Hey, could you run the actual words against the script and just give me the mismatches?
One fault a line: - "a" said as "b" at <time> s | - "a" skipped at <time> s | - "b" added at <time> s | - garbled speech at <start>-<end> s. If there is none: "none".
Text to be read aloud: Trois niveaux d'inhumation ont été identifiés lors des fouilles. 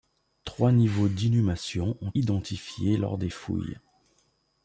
- "été" skipped at 2.1 s